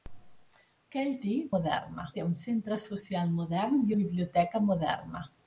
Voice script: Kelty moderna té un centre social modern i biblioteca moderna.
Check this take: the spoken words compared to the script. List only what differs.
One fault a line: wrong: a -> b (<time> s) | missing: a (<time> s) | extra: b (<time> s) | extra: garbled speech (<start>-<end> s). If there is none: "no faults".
no faults